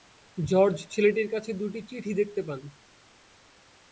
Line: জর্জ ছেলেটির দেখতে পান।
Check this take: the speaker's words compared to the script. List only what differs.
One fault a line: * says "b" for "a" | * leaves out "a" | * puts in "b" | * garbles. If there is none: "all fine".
* puts in "কাছে দুটি চিঠি"